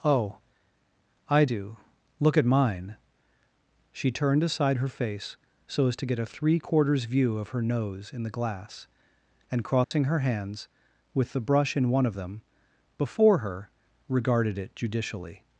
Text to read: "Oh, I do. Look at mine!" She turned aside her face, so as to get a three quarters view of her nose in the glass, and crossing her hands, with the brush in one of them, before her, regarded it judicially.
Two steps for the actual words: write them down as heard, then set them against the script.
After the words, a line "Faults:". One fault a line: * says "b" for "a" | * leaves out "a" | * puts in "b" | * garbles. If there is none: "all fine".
"Oh, I do. Look at mine!" She turned aside her face, so as to get a three quarters view of her nose in the glass, and crossing her hands, with the brush in one of them, before her, regarded it judicially.
Faults:
all fine